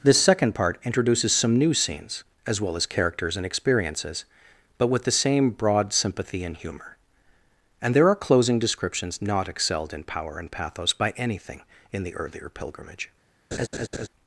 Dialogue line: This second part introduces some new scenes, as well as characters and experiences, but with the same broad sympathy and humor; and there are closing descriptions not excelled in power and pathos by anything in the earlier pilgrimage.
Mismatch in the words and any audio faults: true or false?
true